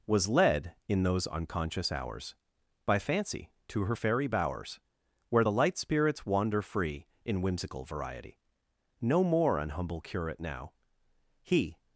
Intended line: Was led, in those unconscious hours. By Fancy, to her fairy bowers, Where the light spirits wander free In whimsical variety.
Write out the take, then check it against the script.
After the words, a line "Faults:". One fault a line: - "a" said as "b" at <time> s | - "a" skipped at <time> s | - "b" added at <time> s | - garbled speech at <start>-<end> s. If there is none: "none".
Was led, in those unconscious hours. By Fancy, to her fairy bowers, Where the light spirits wander free In whimsical variety. No more an humble curate now. He
Faults:
- "No more an humble curate now He" added at 9.0 s